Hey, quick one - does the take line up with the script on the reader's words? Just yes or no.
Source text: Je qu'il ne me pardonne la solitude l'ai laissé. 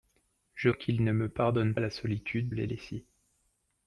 yes